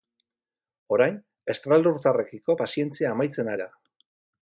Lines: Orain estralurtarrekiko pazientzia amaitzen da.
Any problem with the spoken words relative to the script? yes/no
no